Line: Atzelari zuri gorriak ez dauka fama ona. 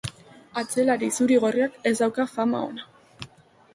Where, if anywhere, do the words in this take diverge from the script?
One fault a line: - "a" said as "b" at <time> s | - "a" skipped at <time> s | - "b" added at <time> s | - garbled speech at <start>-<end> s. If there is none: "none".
none